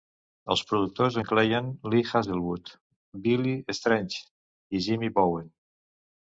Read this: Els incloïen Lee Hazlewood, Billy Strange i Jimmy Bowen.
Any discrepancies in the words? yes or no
yes